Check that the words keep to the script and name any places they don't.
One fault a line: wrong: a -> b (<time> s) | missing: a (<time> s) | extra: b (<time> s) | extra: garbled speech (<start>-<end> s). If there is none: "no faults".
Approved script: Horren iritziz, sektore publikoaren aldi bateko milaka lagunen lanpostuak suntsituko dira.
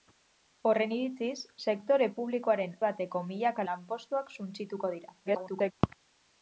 missing: aldi (2.7 s)
missing: lagunen (3.7 s)
extra: garbled speech (5.3-5.7 s)